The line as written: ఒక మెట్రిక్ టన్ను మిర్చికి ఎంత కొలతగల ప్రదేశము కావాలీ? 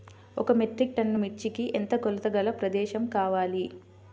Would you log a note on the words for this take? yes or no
no